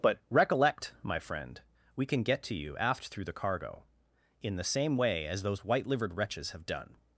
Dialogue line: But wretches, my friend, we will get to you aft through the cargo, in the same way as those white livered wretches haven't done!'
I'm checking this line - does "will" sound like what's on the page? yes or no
no